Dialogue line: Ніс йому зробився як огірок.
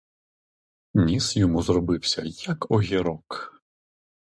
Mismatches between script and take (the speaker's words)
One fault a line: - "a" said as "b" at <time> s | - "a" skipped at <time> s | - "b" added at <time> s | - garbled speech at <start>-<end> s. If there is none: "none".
none